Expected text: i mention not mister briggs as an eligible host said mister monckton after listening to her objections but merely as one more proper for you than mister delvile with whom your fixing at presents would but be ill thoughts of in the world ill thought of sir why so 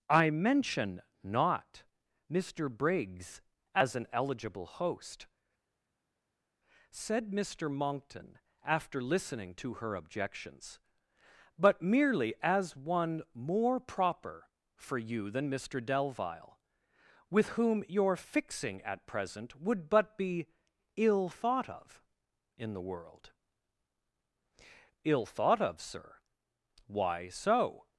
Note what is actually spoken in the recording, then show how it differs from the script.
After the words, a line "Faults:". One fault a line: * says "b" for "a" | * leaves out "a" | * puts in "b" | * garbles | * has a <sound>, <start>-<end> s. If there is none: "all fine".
i mention not mister briggs as an eligible host said mister monckton after listening to her objections but merely as one more proper for you than mister delvile with whom your fixing at present would but be ill thought of in the world ill thought of sir why so
Faults:
* says "present" for "presents"
* says "thought" for "thoughts"